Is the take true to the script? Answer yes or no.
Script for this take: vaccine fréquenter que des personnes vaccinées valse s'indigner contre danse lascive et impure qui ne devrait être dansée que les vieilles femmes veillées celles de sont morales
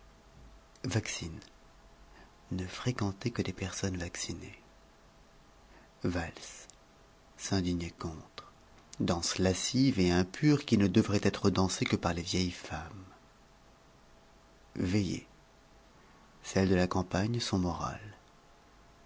no